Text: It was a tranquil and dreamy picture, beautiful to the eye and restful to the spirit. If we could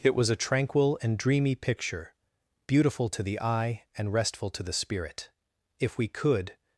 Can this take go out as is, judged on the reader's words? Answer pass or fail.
pass